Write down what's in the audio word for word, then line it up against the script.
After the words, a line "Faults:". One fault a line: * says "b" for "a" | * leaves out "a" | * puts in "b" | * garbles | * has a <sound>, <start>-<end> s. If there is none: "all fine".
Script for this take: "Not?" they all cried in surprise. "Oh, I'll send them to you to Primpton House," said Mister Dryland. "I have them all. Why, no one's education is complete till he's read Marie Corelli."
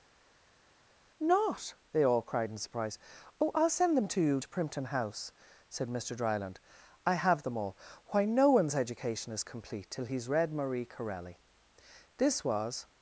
"Not?" they all cried in surprise. "Oh, I'll send them to you to Primpton House," said Mister Dryland. "I have them all. Why, no one's education is complete till he's read Marie Corelli." This was
Faults:
* puts in "This was"